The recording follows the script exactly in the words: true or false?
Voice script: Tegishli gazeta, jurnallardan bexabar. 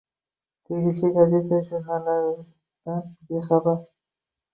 true